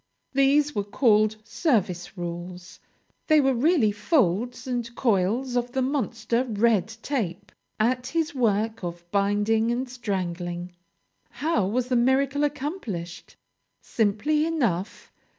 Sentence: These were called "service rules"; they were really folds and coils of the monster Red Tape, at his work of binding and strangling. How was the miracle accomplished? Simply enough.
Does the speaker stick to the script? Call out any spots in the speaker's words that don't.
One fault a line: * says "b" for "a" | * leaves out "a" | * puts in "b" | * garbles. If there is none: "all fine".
all fine